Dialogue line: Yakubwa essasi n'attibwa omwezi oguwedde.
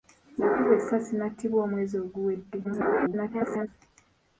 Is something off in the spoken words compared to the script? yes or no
yes